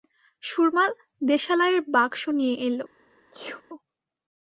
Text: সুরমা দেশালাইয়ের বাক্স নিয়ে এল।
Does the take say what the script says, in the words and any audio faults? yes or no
no